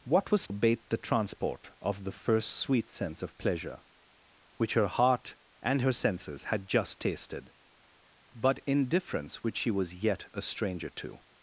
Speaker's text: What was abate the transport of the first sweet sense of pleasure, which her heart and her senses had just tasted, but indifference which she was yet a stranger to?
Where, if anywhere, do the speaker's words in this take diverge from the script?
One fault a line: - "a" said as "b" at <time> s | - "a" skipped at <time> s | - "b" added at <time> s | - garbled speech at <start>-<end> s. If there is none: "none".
none